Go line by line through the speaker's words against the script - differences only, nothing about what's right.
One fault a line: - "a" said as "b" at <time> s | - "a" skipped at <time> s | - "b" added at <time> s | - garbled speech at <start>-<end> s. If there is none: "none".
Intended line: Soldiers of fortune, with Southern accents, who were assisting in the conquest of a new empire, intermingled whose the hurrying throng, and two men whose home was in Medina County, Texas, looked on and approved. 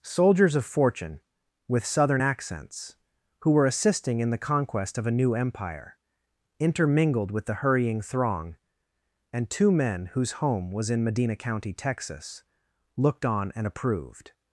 - "whose" said as "with" at 7.3 s